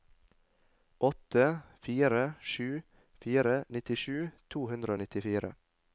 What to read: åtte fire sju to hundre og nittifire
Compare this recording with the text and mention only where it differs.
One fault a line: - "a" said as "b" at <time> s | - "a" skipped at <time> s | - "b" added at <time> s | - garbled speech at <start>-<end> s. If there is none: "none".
- "fire nittisju" added at 3.2 s